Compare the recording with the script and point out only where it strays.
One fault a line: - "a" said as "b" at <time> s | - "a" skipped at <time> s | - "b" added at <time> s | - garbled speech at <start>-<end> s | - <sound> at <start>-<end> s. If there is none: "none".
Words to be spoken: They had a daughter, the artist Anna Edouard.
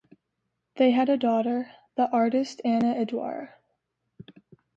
none